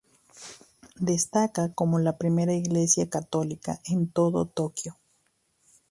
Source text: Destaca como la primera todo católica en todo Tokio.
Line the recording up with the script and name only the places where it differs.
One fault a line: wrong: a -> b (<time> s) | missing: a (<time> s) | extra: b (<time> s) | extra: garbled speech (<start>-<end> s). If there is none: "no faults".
wrong: todo -> iglesia (2.5 s)